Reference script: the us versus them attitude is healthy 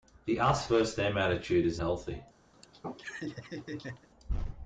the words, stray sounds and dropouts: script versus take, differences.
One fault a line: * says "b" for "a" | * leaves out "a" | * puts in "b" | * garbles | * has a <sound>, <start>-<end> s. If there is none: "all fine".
* has a laugh, 2.5-4.1 s